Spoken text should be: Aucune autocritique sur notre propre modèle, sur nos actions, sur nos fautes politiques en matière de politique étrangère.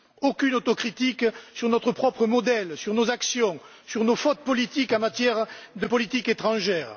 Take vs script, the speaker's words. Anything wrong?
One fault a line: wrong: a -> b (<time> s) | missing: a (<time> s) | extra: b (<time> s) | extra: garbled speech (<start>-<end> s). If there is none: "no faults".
no faults